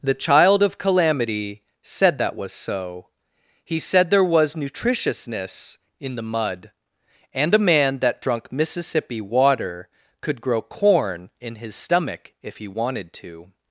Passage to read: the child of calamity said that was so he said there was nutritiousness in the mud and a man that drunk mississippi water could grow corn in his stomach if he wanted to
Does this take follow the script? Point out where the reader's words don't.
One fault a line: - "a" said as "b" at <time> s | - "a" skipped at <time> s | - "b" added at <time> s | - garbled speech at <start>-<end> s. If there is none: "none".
none